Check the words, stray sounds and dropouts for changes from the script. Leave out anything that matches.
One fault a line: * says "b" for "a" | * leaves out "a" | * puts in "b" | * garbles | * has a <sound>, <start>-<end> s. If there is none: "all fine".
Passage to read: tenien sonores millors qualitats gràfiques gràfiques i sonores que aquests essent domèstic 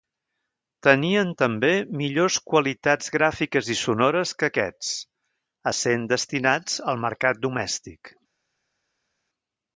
* says "també" for "sonores"
* leaves out "gràfiques"
* puts in "destinats al mercat"